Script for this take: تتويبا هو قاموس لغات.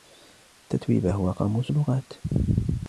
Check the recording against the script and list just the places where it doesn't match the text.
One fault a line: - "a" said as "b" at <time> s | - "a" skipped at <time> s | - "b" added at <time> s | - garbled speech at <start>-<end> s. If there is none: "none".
none